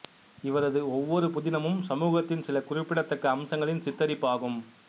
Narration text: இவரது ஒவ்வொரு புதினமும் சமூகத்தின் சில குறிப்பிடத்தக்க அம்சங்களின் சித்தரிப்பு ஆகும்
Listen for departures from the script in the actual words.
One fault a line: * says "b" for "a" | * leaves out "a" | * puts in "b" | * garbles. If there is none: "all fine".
all fine